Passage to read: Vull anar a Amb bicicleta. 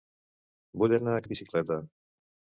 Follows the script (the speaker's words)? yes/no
yes